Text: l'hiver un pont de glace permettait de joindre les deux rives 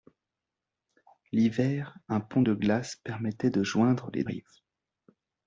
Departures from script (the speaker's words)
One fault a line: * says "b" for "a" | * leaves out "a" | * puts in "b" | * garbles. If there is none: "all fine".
* leaves out "deux"